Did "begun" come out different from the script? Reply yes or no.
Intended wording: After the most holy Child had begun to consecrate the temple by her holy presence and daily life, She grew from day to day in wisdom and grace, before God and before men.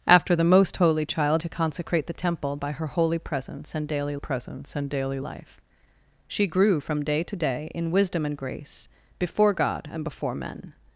yes